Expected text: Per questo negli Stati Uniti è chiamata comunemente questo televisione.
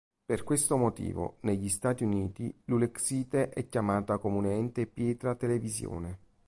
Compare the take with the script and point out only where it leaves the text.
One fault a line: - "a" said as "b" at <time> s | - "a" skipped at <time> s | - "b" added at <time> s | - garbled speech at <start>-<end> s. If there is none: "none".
- "motivo" added at 0.8 s
- "l'ulexite" added at 2.6 s
- "questo" said as "pietra" at 4.8 s